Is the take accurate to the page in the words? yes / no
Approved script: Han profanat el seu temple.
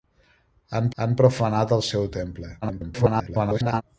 no